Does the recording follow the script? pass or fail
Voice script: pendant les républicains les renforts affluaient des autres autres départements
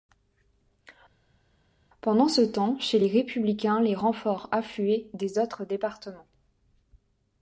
fail